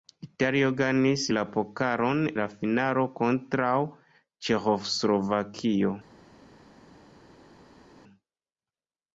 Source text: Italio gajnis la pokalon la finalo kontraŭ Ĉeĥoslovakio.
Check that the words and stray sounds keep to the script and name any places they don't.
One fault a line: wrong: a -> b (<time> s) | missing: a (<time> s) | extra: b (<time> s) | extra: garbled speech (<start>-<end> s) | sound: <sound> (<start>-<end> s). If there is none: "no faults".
no faults